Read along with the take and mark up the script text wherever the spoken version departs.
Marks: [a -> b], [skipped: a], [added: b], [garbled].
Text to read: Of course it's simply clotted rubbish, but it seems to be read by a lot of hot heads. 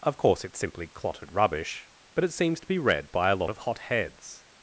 Of course it's simply clotted rubbish, but it seems to be read by a lot of hot heads.